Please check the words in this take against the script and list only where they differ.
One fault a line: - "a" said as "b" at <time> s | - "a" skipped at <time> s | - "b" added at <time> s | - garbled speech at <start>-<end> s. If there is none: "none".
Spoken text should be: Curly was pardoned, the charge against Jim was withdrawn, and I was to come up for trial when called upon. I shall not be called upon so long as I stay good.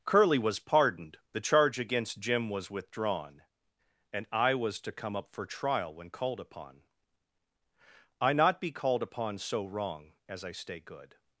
- "shall" skipped at 8.3 s
- "long" said as "wrong" at 9.7 s